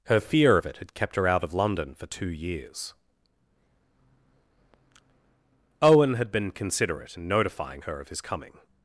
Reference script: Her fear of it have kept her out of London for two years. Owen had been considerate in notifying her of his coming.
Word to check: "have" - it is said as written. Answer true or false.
false